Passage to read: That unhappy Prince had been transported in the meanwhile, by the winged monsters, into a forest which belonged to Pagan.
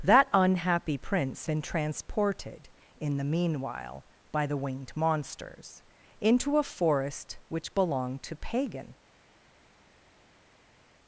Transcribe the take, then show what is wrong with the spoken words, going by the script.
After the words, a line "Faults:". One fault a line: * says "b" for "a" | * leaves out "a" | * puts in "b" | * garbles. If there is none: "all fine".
That unhappy Prince been transported in the meanwhile, by the winged monsters, into a forest which belonged to Pagan.
Faults:
* leaves out "had"